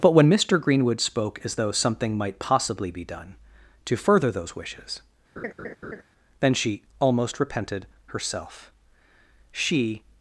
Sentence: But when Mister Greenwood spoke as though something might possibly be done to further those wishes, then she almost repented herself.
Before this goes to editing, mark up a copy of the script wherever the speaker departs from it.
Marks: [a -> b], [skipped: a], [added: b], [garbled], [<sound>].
But when Mister Greenwood spoke as though something might possibly be done to further those wishes, [laugh] then she almost repented herself. [added: She]